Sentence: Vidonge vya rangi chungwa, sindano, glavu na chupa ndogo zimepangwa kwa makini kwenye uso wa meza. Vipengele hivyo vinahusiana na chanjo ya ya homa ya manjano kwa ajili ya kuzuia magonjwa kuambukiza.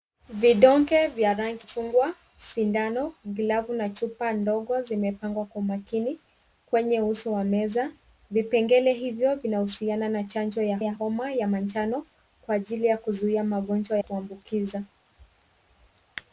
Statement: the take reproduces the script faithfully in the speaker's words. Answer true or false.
true